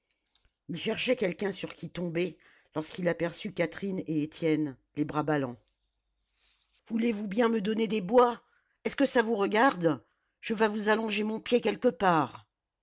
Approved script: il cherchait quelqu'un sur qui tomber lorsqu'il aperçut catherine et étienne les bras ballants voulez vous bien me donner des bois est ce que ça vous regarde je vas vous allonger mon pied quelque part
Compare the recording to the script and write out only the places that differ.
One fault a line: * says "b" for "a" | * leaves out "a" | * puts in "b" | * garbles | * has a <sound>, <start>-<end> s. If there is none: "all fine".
all fine